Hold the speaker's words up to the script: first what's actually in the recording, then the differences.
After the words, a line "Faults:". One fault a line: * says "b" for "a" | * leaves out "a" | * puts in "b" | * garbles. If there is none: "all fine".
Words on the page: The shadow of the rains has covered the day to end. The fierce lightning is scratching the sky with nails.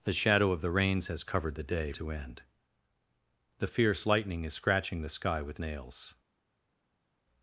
The shadow of the rains has covered the day to end. The fierce lightning is scratching the sky with nails.
Faults:
all fine